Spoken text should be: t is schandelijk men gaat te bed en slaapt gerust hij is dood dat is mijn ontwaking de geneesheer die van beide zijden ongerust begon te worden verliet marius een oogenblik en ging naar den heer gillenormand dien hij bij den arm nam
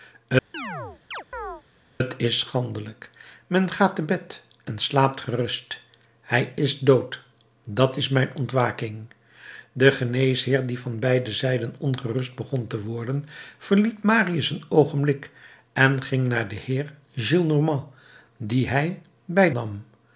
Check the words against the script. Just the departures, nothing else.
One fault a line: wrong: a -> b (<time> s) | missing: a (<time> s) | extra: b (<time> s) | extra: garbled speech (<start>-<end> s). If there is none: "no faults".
missing: den arm (19.5 s)